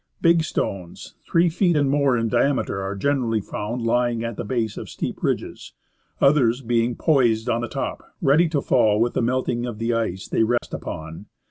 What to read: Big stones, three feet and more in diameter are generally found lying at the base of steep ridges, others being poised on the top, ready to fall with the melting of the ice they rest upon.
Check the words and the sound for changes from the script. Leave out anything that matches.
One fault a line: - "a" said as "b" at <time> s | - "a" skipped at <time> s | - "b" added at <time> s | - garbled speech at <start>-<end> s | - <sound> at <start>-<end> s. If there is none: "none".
- dropout at 10.6-10.6 s